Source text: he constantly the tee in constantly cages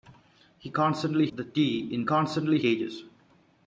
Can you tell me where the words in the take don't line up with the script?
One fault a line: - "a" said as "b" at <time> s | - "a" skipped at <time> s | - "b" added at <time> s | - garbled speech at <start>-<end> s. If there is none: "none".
none